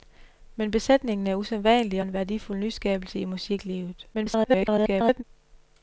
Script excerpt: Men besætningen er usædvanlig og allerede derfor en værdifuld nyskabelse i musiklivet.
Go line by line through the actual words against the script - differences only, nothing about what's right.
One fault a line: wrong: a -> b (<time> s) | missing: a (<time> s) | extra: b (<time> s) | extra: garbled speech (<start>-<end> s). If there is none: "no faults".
missing: og allerede derfor (2.0 s)
extra: garbled speech (4.1-5.2 s)